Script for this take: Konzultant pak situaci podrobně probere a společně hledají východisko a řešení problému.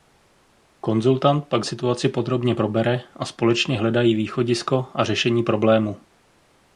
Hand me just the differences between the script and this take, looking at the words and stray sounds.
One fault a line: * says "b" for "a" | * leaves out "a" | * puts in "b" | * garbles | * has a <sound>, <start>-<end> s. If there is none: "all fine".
all fine